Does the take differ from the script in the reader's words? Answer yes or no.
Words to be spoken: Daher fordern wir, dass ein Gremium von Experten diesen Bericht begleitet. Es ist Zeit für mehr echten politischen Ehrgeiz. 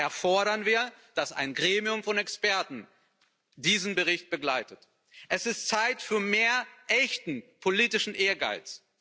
no